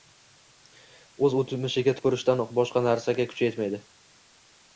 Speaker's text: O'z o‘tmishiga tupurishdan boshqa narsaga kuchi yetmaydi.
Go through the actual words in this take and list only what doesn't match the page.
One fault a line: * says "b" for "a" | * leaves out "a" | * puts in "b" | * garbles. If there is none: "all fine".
all fine